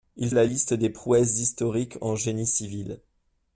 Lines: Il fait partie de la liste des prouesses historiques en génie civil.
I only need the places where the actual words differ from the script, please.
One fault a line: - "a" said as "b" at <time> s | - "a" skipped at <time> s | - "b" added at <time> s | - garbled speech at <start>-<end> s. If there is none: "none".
- "fait partie de" skipped at 0.3 s